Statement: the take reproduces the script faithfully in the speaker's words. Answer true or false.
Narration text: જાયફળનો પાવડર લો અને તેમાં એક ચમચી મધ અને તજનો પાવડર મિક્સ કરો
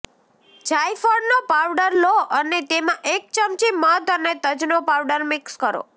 true